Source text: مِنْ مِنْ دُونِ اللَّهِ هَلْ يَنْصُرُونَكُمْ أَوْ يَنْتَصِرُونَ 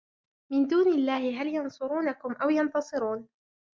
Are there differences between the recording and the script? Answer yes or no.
yes